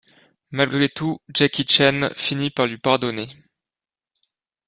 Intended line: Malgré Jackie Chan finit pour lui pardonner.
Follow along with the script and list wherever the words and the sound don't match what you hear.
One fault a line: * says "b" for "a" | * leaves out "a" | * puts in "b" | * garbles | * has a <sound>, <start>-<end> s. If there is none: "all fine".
* puts in "tout"
* says "par" for "pour"